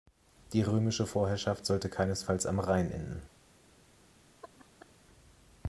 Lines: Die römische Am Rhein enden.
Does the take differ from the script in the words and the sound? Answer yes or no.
yes